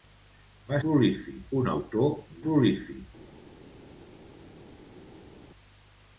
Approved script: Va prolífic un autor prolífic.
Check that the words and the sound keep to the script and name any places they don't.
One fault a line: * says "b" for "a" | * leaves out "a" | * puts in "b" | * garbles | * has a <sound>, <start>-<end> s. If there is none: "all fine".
all fine